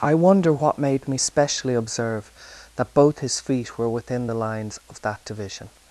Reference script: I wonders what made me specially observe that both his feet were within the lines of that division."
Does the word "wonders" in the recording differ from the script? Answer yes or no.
yes